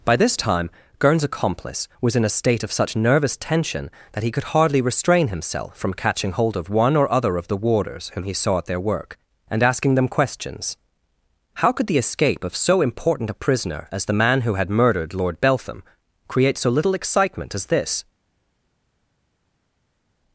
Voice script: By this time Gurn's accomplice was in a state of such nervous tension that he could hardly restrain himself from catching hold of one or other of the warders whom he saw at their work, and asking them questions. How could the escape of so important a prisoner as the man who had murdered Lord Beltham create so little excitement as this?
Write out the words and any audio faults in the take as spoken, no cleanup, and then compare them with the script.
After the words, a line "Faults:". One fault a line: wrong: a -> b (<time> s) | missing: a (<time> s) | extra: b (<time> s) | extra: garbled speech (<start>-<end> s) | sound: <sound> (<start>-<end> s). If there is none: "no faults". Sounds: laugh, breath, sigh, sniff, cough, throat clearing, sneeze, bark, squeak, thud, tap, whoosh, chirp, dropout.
By this time Gurn's accomplice was in a state of such nervous tension that he could hardly restrain himself from catching hold of one or other of the warders whom he saw at their work, and asking them questions. How could the escape of so important a prisoner as the man who had murdered Lord Beltham create so little excitement as this?
Faults:
no faults